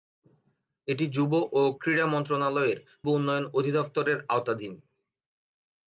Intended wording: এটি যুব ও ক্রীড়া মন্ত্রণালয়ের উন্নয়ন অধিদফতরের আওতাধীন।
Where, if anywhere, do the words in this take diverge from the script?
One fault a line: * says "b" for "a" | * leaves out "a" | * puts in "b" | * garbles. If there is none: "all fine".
all fine